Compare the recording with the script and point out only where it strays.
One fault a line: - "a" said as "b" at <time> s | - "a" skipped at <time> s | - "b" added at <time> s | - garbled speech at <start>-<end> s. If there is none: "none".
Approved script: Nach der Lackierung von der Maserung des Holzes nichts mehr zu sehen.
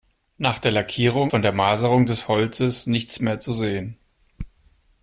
none